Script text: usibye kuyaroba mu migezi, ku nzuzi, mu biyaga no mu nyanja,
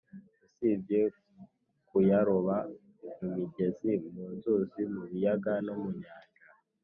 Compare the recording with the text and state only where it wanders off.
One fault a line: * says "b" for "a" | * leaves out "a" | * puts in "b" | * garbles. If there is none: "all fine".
* says "mu" for "ku"